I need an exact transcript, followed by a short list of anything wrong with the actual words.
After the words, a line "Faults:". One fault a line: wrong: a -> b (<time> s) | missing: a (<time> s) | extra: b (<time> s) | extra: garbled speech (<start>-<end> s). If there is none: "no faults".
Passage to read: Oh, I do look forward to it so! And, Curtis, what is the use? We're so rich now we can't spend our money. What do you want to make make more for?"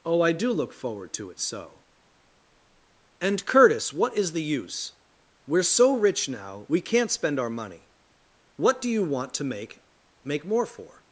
Oh, I do look forward to it so! And, Curtis, what is the use? We're so rich now we can't spend our money. What do you want to make make more for?"
Faults:
no faults